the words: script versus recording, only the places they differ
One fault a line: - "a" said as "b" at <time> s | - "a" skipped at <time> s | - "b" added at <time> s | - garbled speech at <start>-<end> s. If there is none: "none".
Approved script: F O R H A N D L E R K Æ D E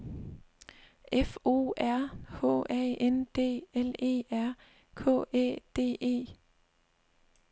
none